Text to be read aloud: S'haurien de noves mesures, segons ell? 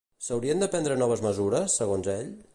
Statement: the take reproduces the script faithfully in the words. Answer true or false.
false